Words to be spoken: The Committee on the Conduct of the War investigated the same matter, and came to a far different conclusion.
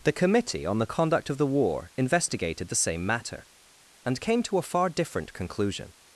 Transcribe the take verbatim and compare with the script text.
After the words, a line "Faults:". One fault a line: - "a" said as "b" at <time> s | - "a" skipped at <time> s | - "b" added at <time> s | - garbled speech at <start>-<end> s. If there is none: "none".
The Committee on the Conduct of the War investigated the same matter, and came to a far different conclusion.
Faults:
none